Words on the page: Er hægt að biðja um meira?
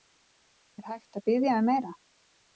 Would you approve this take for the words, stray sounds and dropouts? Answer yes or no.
yes